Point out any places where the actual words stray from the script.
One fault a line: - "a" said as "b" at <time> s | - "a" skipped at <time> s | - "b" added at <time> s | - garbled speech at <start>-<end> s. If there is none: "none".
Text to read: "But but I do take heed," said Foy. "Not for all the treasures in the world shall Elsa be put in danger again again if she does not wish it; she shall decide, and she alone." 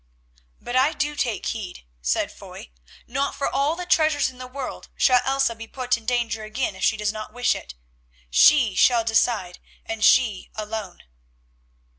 - "but" skipped at 0.8 s
- "again" skipped at 6.8 s